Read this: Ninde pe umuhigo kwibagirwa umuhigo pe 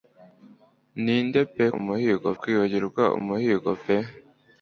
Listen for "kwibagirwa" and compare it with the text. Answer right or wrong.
right